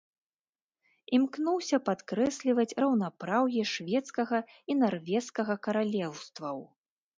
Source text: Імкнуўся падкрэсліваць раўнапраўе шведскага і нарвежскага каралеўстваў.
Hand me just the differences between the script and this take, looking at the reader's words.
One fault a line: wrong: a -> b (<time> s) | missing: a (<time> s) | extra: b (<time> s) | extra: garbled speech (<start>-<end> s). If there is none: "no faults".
no faults